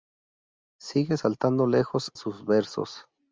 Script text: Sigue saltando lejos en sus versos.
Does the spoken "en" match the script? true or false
false